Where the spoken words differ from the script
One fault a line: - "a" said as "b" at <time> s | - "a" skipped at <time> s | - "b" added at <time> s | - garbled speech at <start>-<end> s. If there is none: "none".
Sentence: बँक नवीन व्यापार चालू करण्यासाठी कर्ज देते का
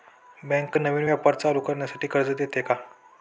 none